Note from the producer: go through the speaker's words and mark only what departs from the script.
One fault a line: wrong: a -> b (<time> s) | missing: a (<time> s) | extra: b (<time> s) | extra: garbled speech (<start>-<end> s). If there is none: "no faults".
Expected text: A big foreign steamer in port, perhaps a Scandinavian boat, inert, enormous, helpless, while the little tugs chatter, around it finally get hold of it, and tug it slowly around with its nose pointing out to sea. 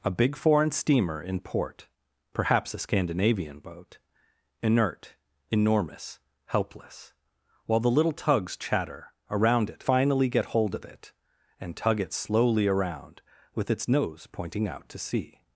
no faults